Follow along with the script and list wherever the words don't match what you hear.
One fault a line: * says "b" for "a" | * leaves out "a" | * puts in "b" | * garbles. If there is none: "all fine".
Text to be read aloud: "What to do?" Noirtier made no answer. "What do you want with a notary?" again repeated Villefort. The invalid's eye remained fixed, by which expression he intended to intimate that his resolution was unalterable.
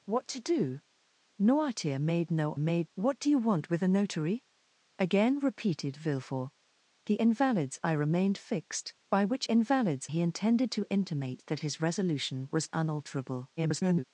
* says "made" for "answer"
* says "invalid's" for "expression"
* garbles